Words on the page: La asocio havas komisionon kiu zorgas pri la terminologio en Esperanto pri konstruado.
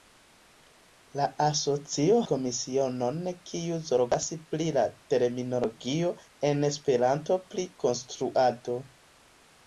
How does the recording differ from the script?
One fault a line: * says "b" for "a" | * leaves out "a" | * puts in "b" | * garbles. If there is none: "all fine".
* leaves out "havas"